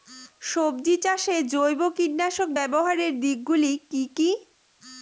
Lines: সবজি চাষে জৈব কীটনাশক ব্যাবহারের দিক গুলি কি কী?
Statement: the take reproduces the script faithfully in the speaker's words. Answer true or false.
true